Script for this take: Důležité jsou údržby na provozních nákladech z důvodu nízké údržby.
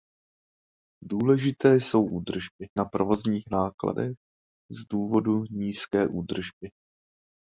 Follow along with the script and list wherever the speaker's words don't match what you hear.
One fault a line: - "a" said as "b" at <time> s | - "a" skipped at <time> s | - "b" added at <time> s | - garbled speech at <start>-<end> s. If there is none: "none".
none